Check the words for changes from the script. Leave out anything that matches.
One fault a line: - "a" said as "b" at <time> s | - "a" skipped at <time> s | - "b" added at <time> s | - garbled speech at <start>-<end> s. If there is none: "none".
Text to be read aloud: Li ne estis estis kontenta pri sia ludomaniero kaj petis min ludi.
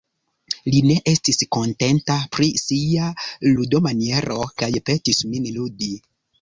- "estis" skipped at 1.4 s